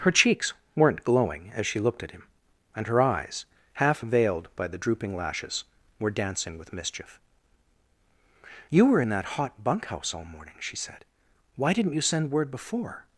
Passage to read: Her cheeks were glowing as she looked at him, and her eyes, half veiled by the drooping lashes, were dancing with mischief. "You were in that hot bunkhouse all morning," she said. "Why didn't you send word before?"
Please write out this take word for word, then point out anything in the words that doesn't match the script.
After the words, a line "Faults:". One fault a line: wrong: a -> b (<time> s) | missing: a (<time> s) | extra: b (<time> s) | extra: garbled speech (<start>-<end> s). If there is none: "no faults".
Her cheeks weren't glowing as she looked at him, and her eyes, half veiled by the drooping lashes, were dancing with mischief. "You were in that hot bunkhouse all morning," she said. "Why didn't you send word before?"
Faults:
wrong: were -> weren't (0.8 s)